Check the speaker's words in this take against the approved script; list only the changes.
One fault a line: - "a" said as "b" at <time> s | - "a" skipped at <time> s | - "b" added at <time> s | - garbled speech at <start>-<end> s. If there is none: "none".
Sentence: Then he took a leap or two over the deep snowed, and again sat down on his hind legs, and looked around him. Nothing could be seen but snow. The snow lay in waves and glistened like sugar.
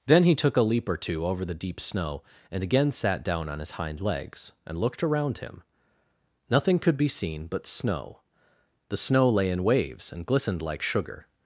- "snowed" said as "snow" at 1.8 s